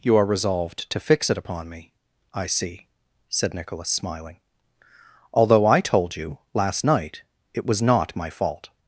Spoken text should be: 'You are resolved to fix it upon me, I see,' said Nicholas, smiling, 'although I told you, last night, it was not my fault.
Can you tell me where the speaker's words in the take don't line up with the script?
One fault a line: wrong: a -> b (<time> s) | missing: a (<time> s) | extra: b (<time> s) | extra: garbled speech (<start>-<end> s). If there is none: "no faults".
no faults